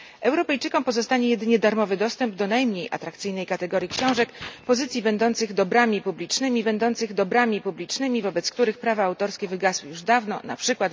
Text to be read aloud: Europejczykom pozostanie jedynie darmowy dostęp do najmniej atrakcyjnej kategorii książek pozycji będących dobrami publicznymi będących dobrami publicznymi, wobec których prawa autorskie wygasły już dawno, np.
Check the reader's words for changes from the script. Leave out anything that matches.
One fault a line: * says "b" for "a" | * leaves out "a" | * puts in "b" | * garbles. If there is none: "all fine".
all fine